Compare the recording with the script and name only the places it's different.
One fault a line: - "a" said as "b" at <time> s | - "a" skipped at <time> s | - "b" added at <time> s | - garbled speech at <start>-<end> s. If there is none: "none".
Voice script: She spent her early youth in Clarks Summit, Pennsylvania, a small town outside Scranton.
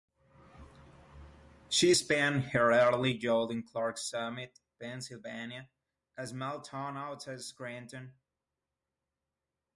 none